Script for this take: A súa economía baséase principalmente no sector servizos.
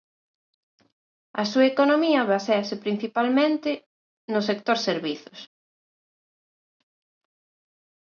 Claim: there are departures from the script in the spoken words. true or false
false